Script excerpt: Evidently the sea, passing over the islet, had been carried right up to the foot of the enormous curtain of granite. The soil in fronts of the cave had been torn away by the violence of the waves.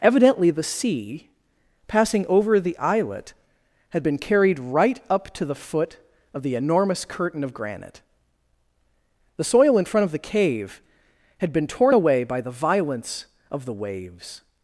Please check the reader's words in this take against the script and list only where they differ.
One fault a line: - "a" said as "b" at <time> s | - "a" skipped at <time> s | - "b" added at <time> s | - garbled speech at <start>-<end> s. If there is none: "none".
- "fronts" said as "front" at 9.8 s